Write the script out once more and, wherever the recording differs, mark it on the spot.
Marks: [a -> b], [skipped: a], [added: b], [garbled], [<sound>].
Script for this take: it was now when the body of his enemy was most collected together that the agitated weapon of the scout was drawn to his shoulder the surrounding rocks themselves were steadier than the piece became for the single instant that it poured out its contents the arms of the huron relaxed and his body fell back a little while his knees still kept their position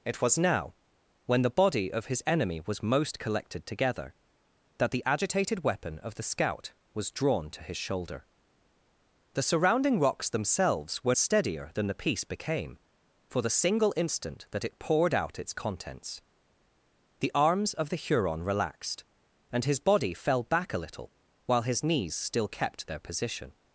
it was now when the body of his enemy was most collected together that the agitated weapon of the scout was drawn to his shoulder the surrounding rocks themselves were steadier than the piece became for the single instant that it poured out its contents the arms of the huron relaxed and his body fell back a little while his knees still kept their position